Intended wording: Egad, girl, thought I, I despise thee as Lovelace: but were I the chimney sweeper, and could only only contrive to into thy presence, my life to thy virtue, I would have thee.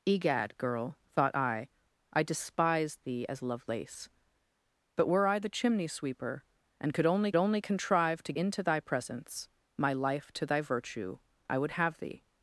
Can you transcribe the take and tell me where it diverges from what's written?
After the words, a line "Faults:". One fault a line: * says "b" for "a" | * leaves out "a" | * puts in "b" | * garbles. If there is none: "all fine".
Egad, girl, thought I, I despise thee as Lovelace: but were I the chimney sweeper, and could only only contrive to into thy presence, my life to thy virtue, I would have thee.
Faults:
all fine